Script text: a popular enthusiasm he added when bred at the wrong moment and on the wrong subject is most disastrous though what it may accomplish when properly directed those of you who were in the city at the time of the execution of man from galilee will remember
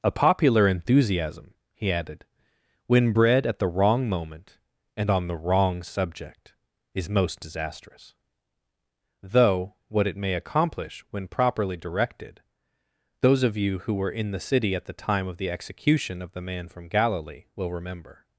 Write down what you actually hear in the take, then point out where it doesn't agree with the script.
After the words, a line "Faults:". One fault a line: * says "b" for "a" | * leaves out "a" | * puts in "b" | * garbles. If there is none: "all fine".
a popular enthusiasm he added when bred at the wrong moment and on the wrong subject is most disastrous though what it may accomplish when properly directed those of you who were in the city at the time of the execution of the man from galilee will remember
Faults:
* puts in "the"